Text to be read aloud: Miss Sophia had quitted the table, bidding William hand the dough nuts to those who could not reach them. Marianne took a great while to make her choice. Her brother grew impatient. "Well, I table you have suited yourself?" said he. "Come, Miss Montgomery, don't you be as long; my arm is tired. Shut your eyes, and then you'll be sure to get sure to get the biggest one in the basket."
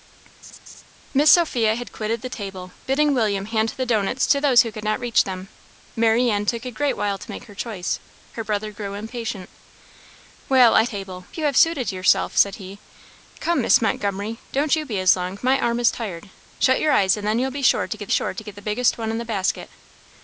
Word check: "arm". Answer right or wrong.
right